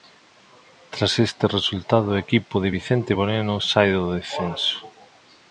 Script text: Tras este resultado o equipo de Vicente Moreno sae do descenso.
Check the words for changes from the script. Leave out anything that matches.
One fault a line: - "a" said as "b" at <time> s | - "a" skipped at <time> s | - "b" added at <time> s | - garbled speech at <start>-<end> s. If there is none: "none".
none